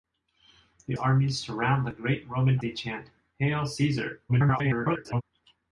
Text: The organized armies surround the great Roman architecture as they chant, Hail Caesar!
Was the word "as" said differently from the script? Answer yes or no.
yes